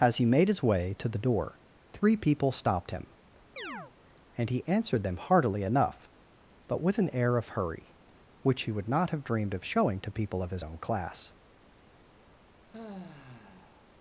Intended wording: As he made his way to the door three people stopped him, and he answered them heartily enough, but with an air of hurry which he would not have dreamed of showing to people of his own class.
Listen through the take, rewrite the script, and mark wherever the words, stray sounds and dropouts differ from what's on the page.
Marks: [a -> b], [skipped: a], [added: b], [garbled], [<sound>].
As he made his way to the door three people stopped him, [chirp] and he answered them heartily enough, but with an air of hurry which he would not have dreamed of showing to people of his own class. [sigh]